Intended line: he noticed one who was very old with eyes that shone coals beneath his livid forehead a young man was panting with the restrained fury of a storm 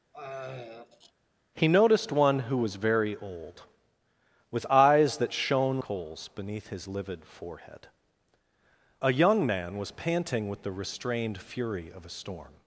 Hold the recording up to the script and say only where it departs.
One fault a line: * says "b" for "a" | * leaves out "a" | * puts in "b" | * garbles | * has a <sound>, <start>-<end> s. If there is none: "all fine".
* has a throat clearing, 0.1-1.1 s